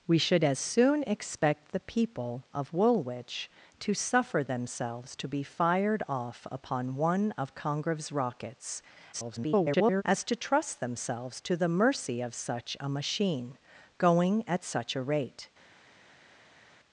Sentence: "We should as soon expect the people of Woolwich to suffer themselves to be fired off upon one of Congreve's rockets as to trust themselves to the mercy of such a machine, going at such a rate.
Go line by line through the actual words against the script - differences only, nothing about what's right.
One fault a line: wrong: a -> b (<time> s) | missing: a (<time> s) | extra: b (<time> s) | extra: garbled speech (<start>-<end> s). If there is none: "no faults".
extra: garbled speech (9.1-10.0 s)